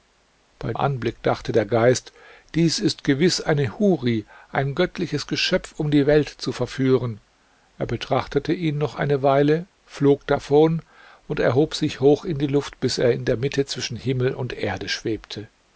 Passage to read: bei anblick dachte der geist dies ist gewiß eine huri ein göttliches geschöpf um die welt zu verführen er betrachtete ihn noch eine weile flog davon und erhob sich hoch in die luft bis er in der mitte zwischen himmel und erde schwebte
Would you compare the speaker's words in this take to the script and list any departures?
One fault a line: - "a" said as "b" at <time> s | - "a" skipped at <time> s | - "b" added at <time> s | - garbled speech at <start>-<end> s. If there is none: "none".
none